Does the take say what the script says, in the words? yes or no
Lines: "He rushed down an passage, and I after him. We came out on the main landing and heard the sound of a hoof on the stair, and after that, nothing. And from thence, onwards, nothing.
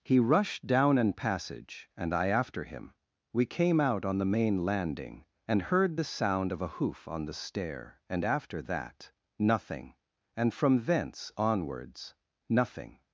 yes